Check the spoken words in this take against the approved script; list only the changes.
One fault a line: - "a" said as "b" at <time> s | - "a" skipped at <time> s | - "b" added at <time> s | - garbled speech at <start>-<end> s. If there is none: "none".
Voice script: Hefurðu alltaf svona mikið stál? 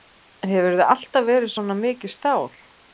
- "verið" added at 1.3 s